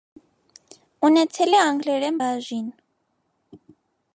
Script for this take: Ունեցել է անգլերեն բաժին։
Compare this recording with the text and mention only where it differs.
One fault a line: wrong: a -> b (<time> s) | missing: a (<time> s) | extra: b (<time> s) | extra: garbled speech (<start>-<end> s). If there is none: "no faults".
no faults